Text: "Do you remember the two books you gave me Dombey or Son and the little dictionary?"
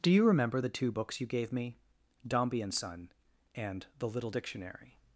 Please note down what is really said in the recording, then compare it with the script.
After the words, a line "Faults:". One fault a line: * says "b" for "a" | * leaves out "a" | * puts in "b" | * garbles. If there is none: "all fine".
"Do you remember the two books you gave me Dombey and Son and the little dictionary?"
Faults:
* says "and" for "or"